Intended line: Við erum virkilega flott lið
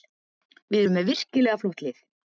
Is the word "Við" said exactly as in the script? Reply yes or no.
yes